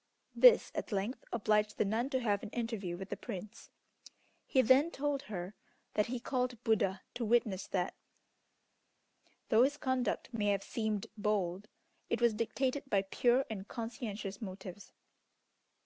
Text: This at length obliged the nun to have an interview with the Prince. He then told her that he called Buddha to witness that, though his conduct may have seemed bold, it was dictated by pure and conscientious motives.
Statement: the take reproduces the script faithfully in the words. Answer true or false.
true